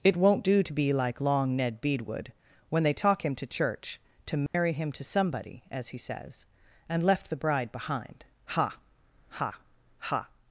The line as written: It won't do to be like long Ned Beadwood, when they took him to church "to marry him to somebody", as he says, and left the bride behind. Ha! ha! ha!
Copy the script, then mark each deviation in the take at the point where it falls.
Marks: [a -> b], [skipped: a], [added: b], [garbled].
It won't do to be like long Ned Beadwood, when they [took -> talk] him to church "to marry him to somebody", as he says, and left the bride behind. Ha! ha! ha!